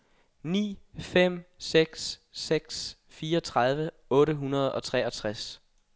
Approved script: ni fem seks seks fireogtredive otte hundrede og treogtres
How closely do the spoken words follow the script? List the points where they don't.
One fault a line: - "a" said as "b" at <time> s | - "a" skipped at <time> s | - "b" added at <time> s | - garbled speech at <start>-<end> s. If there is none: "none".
none